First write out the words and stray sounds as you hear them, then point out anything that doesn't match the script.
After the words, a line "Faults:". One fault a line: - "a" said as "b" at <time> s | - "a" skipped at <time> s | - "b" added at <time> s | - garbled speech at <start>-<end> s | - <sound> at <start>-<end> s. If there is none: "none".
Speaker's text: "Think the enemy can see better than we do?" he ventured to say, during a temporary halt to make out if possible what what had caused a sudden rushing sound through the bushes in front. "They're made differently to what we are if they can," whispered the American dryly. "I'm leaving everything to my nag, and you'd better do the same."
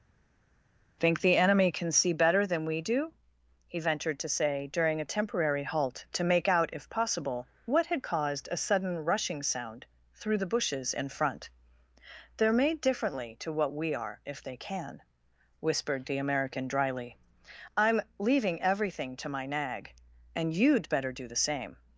"Think the enemy can see better than we do?" he ventured to say, during a temporary halt to make out if possible what had caused a sudden rushing sound through the bushes in front. "They're made differently to what we are if they can," whispered the American dryly. "I'm leaving everything to my nag, and you'd better do the same."
Faults:
- "what" skipped at 7.8 s